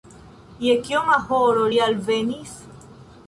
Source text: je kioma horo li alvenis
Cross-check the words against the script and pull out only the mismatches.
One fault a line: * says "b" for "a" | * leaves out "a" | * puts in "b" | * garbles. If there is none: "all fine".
all fine